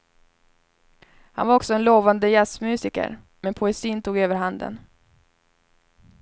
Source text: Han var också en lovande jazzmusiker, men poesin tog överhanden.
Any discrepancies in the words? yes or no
no